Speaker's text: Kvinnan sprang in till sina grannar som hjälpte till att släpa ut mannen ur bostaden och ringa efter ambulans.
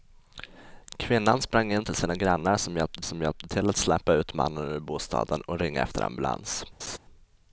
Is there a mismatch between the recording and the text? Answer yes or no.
yes